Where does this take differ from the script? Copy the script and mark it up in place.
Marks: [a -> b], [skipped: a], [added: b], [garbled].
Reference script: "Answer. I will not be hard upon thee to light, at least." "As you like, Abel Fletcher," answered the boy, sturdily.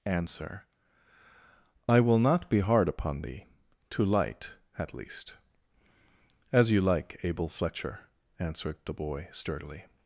"Answer. I will not be hard upon thee to light, at least." "As you like, Abel Fletcher," answered the boy, sturdily.